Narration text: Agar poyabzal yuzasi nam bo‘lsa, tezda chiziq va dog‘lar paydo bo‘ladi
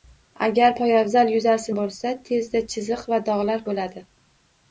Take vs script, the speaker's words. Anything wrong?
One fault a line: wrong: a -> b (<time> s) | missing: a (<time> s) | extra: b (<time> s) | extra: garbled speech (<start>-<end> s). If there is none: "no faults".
missing: nam (1.7 s)
missing: paydo (3.6 s)